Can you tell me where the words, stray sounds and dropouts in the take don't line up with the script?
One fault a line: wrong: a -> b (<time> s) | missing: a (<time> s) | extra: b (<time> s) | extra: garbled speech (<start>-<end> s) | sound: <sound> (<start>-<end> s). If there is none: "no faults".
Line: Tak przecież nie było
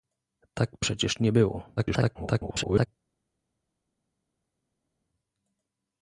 extra: garbled speech (1.8-2.9 s)